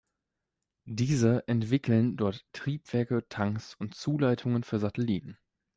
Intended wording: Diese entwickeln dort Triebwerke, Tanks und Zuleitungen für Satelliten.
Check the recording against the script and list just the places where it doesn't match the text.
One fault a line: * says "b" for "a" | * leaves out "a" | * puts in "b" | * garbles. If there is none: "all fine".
all fine